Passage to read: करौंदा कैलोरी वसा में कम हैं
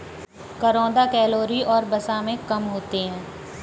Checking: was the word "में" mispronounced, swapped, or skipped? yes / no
no